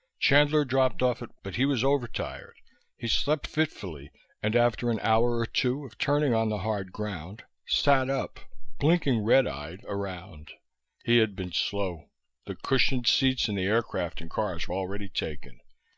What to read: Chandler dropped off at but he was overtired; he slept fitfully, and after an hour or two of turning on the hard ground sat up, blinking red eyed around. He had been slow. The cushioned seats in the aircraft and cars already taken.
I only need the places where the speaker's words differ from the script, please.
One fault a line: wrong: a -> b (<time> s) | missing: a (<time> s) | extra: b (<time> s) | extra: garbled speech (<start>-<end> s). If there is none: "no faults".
no faults